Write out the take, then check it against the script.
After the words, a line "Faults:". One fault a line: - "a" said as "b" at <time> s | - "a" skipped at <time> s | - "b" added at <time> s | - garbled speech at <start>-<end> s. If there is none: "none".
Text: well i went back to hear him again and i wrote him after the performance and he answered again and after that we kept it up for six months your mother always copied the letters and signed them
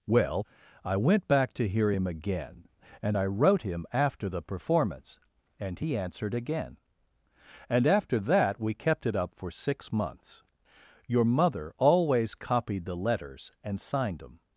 well i went back to hear him again and i wrote him after the performance and he answered again and after that we kept it up for six months your mother always copied the letters and signed them
Faults:
none